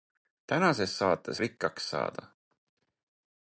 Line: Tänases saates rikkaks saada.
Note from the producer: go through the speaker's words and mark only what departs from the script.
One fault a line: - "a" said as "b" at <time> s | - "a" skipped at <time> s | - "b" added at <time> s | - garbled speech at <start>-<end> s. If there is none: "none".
none